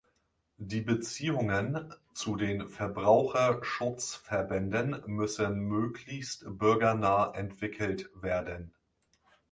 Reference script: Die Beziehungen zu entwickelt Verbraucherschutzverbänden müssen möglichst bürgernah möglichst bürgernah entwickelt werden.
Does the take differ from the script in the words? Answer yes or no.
yes